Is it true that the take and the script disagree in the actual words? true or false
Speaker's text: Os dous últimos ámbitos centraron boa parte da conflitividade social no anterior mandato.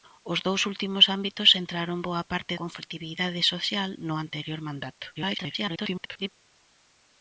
true